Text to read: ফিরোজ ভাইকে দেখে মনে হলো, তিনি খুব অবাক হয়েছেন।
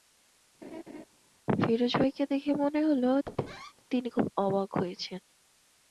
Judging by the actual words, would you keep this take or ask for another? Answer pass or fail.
pass